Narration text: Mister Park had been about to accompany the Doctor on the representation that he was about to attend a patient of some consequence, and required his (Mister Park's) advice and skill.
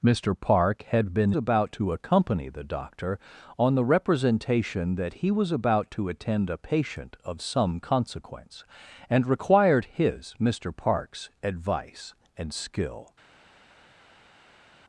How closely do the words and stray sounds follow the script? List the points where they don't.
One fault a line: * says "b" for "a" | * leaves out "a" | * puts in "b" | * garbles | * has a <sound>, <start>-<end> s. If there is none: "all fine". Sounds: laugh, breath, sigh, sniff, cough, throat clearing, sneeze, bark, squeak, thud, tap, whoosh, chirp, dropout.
all fine